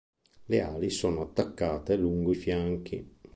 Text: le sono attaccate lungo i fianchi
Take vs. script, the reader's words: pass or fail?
fail